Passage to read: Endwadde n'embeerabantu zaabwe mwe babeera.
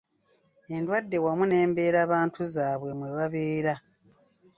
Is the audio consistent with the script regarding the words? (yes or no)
no